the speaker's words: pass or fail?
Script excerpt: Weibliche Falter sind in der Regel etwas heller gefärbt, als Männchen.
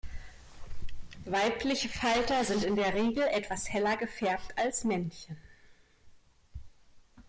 pass